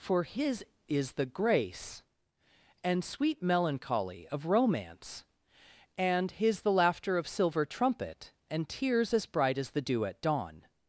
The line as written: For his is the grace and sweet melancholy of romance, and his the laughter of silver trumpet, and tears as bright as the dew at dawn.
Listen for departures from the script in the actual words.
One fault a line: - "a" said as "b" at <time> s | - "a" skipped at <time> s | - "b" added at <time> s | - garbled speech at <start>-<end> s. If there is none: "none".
none